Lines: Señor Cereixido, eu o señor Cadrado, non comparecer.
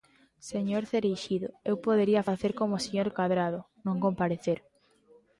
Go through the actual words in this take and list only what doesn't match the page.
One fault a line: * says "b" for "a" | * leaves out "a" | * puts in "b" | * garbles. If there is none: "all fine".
* puts in "podería facer como"